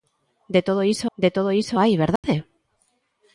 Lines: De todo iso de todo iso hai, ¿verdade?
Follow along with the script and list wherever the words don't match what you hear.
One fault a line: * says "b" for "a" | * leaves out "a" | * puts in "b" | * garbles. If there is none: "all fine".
all fine